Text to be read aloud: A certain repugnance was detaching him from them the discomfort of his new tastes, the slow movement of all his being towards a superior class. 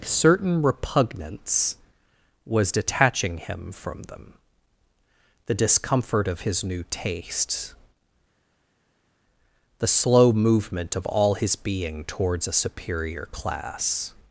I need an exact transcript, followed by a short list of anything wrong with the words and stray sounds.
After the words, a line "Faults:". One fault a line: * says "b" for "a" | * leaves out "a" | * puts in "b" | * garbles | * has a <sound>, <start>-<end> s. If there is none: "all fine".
certain repugnance was detaching him from them the discomfort of his new tastes, the slow movement of all his being towards a superior class.
Faults:
* leaves out "A"